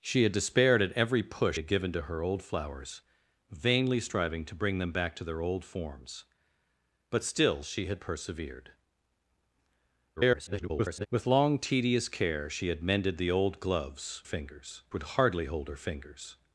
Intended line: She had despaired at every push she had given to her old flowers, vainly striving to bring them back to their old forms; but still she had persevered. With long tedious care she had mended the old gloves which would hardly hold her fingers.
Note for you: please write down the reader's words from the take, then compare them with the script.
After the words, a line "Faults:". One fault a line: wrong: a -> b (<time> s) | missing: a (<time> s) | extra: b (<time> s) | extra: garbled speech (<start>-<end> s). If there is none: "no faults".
She had despaired at every push had given to her old flowers, vainly striving to bring them back to their old forms; but still she had persevered. [garbled] With long tedious care she had mended the old gloves fingers would hardly hold her fingers.
Faults:
missing: she (1.6 s)
extra: garbled speech (10.2-11.1 s)
wrong: which -> fingers (14.2 s)